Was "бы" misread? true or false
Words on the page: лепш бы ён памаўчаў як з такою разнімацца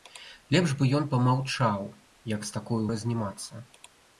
false